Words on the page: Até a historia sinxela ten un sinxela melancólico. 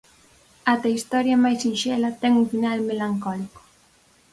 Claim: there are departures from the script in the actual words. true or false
true